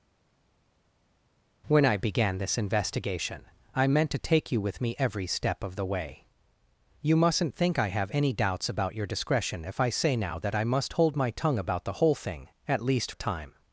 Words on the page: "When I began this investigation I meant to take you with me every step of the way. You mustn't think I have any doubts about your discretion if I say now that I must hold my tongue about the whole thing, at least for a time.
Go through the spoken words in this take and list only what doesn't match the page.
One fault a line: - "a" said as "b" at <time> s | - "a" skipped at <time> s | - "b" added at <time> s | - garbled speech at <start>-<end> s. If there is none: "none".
- "for" skipped at 13.1 s